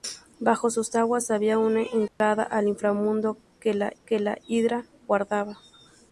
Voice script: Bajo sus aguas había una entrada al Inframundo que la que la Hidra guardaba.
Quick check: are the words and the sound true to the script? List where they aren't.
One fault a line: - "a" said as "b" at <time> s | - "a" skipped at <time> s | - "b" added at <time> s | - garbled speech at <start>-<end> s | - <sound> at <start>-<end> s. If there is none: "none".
- dropout at 2.1-2.2 s